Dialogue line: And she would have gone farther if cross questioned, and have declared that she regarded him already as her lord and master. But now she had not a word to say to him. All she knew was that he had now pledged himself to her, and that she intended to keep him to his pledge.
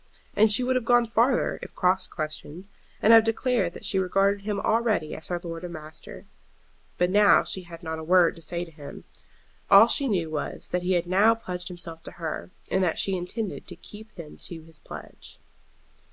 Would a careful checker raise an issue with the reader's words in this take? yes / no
no